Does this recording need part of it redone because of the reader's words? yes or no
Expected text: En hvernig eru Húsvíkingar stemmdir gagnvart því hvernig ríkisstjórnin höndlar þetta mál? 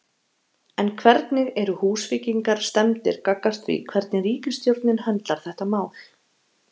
no